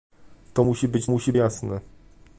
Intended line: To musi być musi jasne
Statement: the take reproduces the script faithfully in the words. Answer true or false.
true